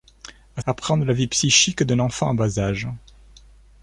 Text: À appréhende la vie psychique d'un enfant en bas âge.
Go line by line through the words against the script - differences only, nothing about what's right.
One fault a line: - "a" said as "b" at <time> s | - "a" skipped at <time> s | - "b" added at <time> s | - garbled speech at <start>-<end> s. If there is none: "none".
none